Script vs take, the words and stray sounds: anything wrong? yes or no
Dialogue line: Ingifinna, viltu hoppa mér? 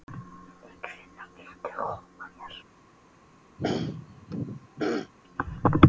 yes